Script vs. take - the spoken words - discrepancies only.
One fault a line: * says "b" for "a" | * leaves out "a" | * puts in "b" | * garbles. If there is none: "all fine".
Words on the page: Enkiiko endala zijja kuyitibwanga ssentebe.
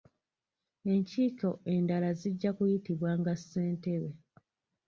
all fine